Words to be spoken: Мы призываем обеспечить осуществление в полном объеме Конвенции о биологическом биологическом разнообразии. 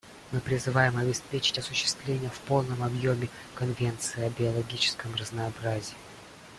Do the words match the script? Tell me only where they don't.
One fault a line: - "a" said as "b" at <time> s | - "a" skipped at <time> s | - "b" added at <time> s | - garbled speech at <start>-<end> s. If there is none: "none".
- "биологическом" skipped at 5.1 s